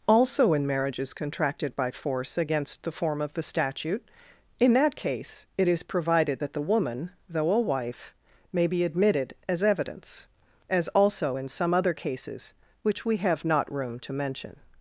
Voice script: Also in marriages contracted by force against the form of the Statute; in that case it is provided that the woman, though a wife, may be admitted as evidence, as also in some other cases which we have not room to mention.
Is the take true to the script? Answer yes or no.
yes